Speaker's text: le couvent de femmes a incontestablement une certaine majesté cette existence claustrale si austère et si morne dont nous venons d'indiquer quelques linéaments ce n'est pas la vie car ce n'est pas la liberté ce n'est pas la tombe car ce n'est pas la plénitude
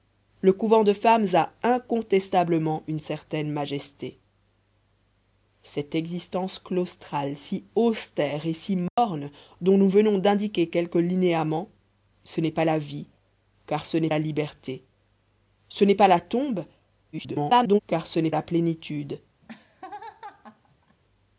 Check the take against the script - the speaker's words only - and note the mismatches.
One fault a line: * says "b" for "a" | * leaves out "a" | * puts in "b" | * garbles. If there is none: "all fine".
* leaves out "pas"
* garbles
* leaves out "pas"